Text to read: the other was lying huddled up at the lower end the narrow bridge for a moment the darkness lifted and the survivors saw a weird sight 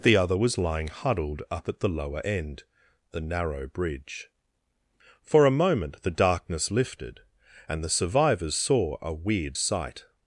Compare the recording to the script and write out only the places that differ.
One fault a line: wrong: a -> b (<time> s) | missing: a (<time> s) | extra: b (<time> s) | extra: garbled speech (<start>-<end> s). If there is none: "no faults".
no faults